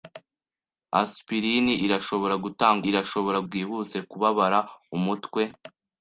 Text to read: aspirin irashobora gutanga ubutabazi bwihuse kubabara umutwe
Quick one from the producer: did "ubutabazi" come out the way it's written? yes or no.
no